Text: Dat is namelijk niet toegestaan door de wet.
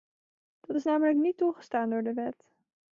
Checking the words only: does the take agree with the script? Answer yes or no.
yes